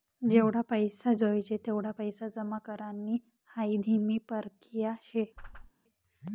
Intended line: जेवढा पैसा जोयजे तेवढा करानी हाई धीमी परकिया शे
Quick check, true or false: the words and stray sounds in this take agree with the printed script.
false